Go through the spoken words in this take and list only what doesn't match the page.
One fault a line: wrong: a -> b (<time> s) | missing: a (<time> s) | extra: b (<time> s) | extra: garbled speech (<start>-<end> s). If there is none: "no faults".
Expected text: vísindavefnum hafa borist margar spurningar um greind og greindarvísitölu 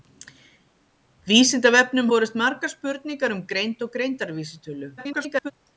missing: hafa (2.1 s)
extra: garbled speech (5.0-5.5 s)